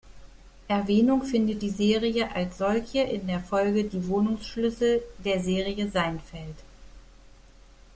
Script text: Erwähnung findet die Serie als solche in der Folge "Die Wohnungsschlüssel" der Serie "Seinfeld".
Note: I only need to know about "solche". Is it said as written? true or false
true